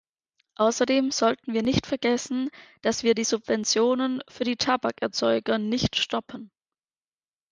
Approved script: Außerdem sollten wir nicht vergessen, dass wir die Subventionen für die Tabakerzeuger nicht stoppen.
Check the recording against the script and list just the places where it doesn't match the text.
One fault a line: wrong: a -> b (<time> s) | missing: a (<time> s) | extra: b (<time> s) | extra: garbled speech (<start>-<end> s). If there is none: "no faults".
no faults